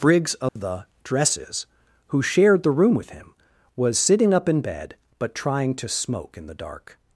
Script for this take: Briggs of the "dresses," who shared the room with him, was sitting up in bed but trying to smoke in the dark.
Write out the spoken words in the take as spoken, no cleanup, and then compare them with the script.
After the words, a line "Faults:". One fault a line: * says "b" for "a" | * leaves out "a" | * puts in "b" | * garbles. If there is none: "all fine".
Briggs of the "dresses," who shared the room with him, was sitting up in bed but trying to smoke in the dark.
Faults:
all fine